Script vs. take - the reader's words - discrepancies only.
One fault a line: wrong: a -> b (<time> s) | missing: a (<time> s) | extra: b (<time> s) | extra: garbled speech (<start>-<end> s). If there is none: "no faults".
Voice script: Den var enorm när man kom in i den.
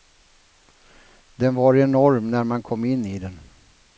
no faults